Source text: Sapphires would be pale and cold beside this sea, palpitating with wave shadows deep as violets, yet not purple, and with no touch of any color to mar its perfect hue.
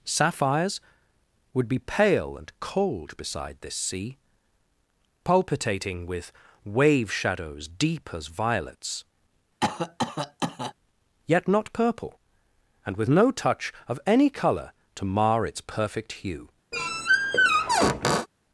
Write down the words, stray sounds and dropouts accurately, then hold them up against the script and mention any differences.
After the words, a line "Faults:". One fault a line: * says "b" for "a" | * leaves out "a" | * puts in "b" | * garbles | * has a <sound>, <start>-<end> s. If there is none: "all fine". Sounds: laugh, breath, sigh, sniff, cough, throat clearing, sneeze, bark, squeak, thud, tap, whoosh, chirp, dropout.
Sapphires would be pale and cold beside this sea, palpitating with wave shadows deep as violets, yet not purple, and with no touch of any color to mar its perfect hue.
Faults:
* has a cough, 9.6-10.7 s
* has a squeak, 16.7-18.3 s